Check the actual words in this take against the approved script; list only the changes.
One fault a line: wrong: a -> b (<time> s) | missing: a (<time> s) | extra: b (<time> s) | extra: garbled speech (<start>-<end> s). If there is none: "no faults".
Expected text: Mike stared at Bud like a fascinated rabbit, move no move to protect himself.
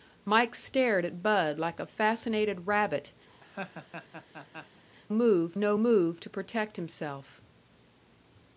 no faults